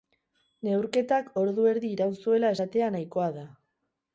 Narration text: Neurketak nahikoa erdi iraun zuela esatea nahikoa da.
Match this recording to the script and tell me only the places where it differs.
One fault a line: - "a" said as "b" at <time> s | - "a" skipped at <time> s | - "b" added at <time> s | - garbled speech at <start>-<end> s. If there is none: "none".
- "nahikoa" said as "ordu" at 1.4 s